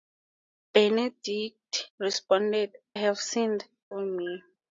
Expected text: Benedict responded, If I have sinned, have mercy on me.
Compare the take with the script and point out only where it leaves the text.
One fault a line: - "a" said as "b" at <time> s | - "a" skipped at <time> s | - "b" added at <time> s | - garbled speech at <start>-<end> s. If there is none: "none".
- "If I" skipped at 2.7 s
- "have mercy" skipped at 3.7 s